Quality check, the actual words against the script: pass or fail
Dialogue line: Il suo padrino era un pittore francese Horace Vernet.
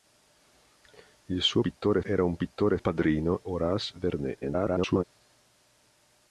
fail